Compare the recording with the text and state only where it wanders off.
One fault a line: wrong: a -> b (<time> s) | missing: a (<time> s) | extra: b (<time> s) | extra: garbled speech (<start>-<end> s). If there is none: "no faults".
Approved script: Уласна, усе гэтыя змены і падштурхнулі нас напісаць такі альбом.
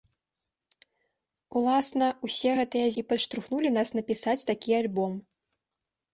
missing: змены (2.9 s)